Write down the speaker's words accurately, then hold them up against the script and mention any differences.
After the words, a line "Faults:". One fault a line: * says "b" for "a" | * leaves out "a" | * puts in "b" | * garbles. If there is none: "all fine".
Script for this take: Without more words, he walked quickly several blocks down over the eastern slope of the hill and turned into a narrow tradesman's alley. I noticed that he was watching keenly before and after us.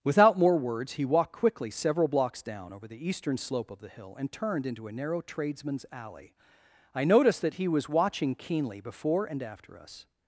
Without more words, he walked quickly several blocks down over the eastern slope of the hill and turned into a narrow tradesman's alley. I noticed that he was watching keenly before and after us.
Faults:
all fine